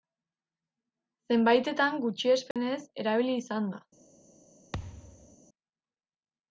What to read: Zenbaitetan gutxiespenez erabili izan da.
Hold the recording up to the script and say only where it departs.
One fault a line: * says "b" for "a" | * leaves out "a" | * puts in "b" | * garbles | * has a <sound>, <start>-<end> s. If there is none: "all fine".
* has a dropout, 2.5-2.6 s
* has a thud, 4.7-5.4 s